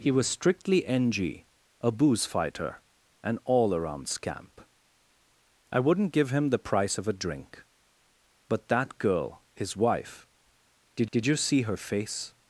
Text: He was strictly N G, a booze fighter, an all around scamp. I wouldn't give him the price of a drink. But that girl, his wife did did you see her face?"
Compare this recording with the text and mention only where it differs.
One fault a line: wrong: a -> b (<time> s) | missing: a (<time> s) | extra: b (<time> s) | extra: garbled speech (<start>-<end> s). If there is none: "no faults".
no faults